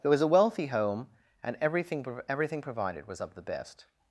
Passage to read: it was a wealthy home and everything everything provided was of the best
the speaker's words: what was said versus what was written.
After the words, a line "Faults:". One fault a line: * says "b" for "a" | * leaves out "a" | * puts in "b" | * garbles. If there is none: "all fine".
it was a wealthy home and everything everything provided was of the best
Faults:
all fine